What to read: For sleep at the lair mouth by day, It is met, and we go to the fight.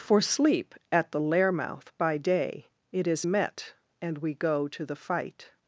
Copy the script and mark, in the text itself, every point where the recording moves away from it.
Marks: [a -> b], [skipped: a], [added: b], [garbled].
For sleep at the lair mouth by day, It is met, and we go to the fight.